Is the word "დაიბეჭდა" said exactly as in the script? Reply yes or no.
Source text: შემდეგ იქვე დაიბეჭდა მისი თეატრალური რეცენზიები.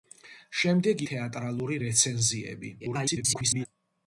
no